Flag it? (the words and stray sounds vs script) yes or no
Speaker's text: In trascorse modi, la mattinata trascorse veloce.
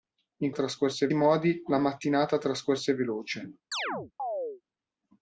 yes